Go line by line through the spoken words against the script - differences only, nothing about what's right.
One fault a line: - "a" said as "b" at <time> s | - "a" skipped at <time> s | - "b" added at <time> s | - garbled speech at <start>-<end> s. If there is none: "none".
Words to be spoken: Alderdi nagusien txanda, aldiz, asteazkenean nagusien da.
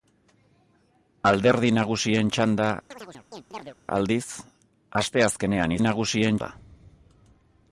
none